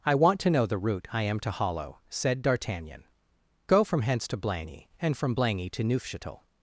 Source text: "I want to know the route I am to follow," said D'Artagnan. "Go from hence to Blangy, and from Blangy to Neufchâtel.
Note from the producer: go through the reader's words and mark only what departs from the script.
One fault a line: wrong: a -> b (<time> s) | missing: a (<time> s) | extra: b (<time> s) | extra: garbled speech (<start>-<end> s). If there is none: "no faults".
wrong: follow -> hollow (1.5 s)